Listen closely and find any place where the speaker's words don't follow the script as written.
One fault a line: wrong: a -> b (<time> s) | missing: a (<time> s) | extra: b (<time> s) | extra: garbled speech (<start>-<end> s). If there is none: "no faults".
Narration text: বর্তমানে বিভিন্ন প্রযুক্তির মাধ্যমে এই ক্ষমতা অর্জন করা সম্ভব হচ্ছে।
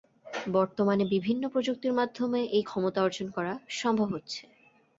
no faults